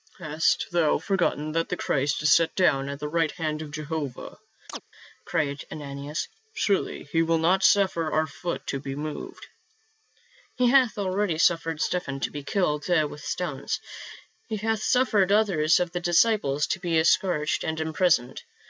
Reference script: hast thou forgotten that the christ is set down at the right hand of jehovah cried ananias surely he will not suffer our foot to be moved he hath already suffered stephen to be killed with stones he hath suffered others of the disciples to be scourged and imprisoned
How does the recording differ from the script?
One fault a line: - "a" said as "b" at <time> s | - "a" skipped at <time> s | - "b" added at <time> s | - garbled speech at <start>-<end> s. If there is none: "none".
none